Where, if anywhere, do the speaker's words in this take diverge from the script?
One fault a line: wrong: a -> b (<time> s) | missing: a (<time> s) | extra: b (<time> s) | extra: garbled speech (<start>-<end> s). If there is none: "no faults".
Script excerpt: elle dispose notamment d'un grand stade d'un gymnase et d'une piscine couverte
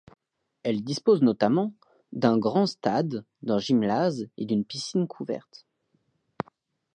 no faults